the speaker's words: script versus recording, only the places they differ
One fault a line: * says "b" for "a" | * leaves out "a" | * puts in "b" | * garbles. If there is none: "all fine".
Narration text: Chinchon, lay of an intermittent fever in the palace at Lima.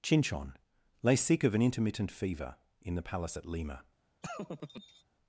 * puts in "sick"